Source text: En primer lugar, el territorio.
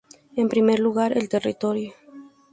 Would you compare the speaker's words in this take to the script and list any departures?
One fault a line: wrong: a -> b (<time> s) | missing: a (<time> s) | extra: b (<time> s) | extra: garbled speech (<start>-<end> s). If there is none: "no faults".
no faults